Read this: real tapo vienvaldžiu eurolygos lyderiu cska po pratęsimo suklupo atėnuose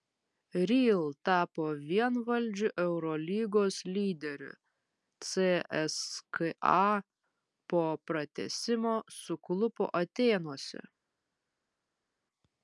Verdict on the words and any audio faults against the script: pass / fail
pass